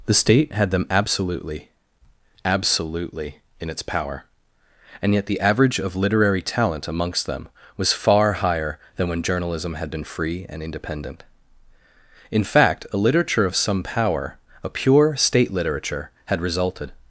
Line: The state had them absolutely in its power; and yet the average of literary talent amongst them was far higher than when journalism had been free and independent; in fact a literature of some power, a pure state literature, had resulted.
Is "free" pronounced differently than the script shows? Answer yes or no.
no